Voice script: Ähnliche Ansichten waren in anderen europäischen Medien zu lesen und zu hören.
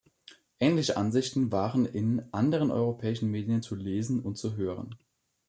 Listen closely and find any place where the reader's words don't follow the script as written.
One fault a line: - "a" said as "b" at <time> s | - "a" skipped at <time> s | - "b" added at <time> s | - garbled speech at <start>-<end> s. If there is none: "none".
none